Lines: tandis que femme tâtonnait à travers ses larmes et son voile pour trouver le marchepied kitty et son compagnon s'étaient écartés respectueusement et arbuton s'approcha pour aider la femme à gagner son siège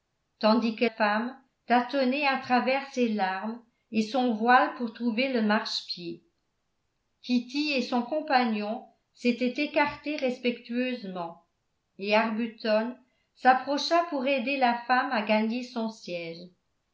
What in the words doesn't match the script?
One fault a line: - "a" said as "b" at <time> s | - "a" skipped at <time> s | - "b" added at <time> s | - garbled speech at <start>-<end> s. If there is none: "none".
none